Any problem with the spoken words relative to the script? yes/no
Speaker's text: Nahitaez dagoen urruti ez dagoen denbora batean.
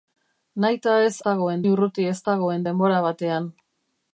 no